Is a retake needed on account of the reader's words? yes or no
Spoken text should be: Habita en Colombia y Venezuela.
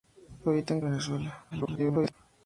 yes